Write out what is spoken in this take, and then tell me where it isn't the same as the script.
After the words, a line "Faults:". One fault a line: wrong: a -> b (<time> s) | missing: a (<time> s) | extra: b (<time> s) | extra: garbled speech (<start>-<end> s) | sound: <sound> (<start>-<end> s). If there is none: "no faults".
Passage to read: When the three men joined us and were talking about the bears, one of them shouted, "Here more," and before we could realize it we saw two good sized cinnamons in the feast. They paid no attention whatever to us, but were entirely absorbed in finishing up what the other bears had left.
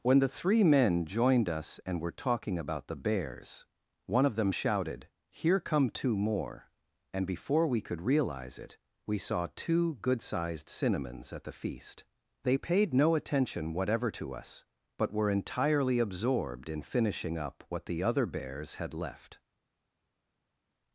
When the three men joined us and were talking about the bears, one of them shouted, "Here come two more," and before we could realize it we saw two good sized cinnamons at the feast. They paid no attention whatever to us, but were entirely absorbed in finishing up what the other bears had left.
Faults:
extra: come two (5.6 s)
wrong: in -> at (11.3 s)